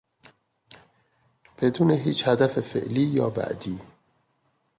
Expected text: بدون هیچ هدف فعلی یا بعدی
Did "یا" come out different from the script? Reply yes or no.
no